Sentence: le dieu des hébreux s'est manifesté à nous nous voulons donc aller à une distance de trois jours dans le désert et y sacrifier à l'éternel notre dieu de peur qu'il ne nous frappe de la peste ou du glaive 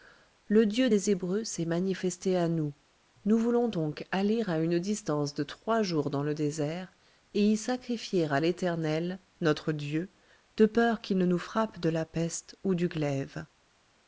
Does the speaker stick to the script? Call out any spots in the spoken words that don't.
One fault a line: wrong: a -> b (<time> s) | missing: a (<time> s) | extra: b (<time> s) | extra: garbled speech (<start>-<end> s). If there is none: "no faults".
no faults